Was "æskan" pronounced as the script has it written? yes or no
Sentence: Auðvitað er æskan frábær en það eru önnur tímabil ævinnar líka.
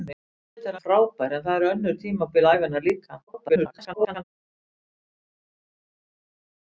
no